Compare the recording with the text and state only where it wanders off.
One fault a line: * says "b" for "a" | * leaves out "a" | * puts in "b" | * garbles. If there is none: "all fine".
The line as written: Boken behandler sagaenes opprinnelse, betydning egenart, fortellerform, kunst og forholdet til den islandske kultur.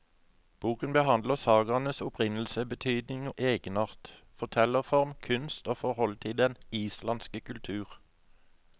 all fine